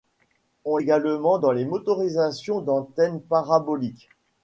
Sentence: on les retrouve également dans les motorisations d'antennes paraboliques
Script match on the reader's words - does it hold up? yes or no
no